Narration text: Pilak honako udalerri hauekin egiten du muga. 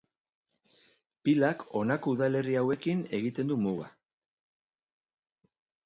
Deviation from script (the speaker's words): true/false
false